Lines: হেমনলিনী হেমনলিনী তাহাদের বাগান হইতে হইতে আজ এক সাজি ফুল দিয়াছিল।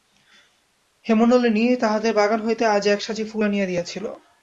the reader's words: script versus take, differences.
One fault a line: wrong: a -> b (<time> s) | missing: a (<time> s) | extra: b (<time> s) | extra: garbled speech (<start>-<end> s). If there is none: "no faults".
missing: হেমনলিনী (1.6 s)
missing: হইতে (2.6 s)
extra: আনিয়া (3.4 s)